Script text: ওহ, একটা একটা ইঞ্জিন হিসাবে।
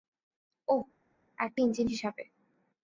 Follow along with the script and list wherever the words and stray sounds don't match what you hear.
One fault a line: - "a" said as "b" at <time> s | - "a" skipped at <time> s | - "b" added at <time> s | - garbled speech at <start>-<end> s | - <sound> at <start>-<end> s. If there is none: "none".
- "একটা" skipped at 1.6 s